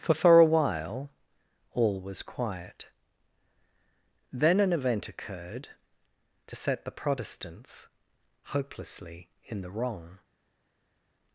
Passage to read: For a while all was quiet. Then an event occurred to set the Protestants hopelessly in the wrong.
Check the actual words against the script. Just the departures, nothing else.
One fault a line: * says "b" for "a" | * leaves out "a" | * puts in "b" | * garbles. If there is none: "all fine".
* puts in "for"